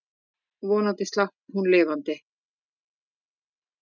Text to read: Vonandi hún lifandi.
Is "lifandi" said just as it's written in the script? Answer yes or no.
yes